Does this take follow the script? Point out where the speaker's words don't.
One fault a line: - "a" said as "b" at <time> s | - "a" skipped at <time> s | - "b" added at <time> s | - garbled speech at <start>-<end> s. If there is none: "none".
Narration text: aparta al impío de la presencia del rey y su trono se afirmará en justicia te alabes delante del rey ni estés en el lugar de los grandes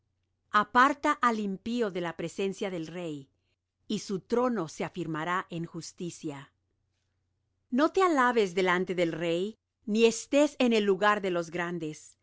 - "no" added at 7.7 s